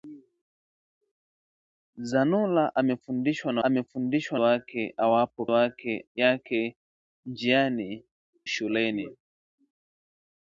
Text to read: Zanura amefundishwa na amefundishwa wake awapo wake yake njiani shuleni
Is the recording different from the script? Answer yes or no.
no